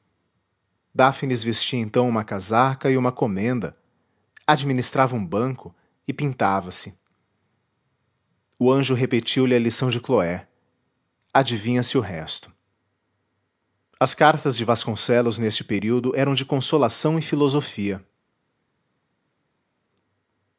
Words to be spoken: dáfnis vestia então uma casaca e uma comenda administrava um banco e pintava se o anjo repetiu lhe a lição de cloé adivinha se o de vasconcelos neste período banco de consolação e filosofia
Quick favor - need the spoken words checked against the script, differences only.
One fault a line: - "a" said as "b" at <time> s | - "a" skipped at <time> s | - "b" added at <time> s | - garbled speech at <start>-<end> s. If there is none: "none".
- "resto as cartas" added at 12.0 s
- "banco" said as "eram" at 16.1 s